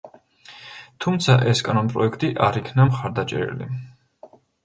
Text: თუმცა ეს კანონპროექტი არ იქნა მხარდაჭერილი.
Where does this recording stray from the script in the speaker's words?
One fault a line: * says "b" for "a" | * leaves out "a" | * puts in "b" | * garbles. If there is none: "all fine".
all fine